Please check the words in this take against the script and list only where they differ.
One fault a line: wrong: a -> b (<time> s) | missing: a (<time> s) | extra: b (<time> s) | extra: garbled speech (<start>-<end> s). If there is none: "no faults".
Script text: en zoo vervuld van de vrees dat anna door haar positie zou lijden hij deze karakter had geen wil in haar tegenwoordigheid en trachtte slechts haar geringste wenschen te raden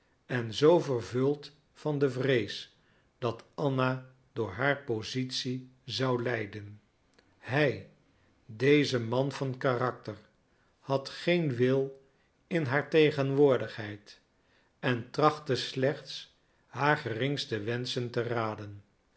extra: man van (9.0 s)